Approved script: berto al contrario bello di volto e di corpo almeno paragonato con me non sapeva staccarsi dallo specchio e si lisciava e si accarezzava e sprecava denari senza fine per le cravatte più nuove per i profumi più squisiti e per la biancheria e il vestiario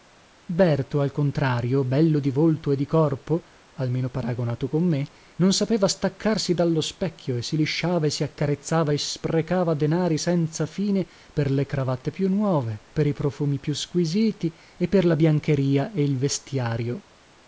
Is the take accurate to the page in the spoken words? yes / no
yes